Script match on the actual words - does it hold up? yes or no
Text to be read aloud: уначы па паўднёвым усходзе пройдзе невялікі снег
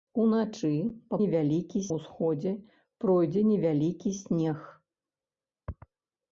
no